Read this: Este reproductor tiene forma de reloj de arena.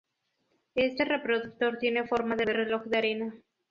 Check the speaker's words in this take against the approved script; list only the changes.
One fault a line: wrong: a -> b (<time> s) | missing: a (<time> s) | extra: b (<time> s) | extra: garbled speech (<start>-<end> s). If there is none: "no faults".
extra: de (2.4 s)